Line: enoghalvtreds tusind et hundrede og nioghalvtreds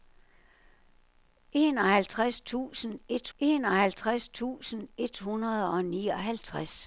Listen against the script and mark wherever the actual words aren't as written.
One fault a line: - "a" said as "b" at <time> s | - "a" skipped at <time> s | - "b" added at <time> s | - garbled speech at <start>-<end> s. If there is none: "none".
- "enoghalvtreds tusind et" added at 3.4 s